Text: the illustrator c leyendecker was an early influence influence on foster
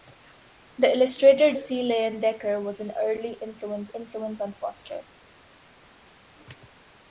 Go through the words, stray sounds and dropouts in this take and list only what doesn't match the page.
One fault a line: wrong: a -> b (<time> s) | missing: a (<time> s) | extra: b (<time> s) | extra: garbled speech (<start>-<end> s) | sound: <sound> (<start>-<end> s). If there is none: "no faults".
no faults